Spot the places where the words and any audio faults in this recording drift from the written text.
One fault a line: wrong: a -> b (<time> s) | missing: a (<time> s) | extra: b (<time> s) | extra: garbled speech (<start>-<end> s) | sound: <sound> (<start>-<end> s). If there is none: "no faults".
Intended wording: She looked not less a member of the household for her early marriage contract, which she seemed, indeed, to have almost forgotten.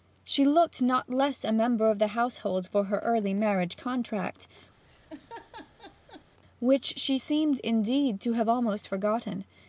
sound: laugh (4.8-6.2 s)